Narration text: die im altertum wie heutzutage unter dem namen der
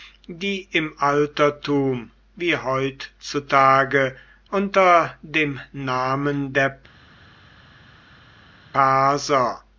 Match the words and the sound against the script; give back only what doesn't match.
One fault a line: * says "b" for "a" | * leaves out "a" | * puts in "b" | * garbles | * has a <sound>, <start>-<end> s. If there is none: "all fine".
all fine